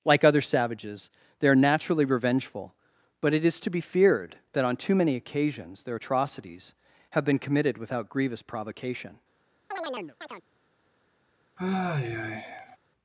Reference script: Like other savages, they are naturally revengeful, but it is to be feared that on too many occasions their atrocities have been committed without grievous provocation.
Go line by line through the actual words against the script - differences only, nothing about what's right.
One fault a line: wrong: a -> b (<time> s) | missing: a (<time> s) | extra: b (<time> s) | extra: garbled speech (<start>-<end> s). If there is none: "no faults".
no faults